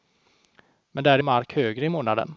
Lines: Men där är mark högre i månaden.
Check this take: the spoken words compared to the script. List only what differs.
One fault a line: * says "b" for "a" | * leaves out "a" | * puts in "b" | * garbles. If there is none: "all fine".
all fine